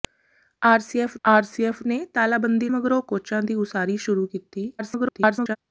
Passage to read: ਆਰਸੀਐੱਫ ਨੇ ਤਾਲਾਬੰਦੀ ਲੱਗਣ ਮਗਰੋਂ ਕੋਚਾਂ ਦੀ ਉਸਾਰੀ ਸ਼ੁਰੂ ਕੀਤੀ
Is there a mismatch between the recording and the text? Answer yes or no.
yes